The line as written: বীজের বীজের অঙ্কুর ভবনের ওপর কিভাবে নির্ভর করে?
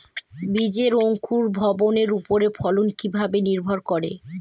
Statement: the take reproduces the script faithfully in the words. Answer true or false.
false